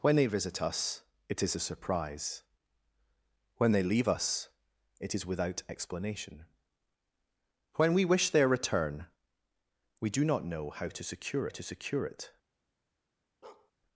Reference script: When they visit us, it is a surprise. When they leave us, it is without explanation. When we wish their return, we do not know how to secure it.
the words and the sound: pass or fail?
fail